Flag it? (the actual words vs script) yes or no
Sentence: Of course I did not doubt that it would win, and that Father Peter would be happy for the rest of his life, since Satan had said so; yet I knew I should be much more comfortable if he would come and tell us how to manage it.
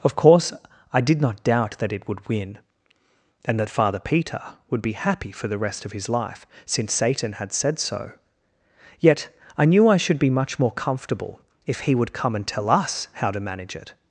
no